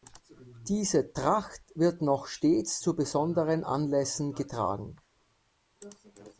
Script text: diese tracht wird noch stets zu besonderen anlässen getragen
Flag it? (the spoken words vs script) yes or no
no